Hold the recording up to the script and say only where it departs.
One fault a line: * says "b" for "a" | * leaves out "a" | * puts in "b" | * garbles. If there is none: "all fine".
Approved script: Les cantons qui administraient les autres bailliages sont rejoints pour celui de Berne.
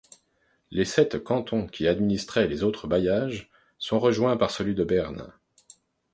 * puts in "sept"
* says "par" for "pour"